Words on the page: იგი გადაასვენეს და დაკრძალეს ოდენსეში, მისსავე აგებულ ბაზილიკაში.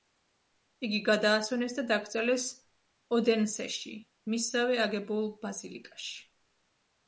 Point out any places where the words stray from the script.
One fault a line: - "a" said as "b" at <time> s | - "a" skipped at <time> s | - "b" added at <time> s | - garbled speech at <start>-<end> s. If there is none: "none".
none